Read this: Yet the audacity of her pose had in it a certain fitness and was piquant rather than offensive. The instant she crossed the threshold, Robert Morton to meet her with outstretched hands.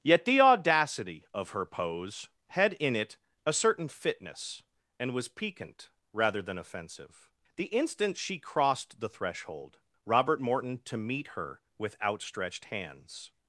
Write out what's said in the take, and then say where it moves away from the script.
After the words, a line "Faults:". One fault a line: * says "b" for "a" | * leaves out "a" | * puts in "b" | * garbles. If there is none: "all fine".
Yet the audacity of her pose had in it a certain fitness and was piquant rather than offensive. The instant she crossed the threshold, Robert Morton to meet her with outstretched hands.
Faults:
all fine